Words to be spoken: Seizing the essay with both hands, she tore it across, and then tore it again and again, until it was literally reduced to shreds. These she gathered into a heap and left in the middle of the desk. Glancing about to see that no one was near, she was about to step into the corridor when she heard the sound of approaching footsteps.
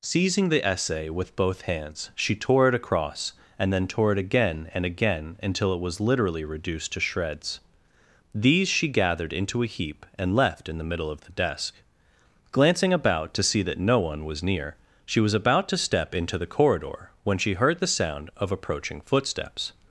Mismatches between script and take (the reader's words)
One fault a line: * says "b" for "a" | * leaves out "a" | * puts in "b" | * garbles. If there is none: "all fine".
all fine